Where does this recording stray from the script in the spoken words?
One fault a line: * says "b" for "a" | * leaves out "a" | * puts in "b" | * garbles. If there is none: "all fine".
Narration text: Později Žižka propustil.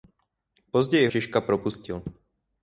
all fine